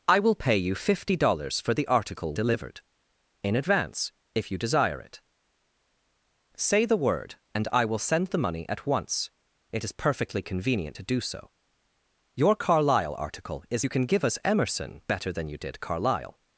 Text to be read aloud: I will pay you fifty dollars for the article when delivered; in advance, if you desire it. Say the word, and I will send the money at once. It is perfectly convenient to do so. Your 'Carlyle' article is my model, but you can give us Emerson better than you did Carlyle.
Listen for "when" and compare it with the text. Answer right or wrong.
wrong